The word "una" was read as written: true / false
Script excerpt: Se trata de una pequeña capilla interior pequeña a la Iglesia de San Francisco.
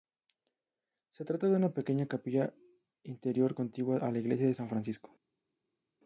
true